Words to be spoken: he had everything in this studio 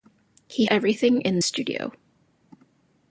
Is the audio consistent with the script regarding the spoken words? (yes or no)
no